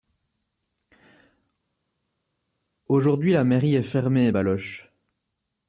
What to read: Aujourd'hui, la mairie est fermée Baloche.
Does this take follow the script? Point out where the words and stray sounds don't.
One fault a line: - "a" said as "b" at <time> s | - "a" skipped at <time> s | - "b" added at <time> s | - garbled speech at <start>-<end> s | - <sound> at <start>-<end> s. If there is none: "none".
none